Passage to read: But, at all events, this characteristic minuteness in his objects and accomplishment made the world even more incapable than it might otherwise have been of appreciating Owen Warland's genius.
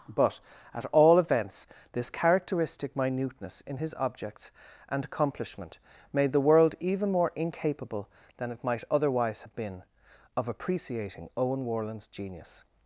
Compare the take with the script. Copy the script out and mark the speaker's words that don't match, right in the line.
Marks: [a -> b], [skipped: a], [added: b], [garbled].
But, at all events, this characteristic minuteness in his objects and accomplishment made the world even more incapable than it might otherwise have been of appreciating Owen Warland's genius.